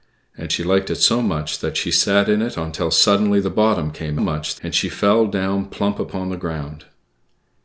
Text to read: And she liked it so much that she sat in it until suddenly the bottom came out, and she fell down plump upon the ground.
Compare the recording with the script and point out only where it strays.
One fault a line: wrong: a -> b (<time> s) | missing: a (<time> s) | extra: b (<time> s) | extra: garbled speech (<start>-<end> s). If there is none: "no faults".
wrong: out -> much (4.2 s)